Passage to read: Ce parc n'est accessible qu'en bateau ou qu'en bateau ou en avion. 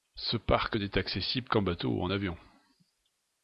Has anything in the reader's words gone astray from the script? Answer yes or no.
yes